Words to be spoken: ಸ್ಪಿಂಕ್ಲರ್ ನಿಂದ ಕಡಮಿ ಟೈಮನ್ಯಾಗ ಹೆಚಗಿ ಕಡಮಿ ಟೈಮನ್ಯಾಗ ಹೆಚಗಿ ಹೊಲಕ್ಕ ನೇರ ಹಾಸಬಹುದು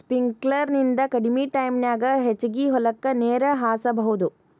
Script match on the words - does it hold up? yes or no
no